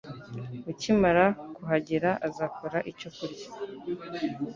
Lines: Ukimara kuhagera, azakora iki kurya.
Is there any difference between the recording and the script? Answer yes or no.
yes